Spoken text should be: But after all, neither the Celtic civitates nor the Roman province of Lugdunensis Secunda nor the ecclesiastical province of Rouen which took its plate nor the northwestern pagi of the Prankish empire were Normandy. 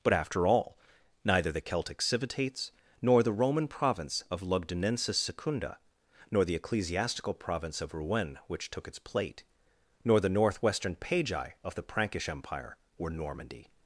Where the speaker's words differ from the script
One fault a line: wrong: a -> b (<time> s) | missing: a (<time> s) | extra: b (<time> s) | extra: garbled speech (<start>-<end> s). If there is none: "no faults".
no faults